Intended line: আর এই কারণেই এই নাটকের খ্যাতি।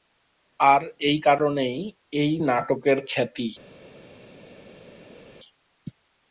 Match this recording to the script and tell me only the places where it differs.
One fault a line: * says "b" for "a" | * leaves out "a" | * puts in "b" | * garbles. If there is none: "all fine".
all fine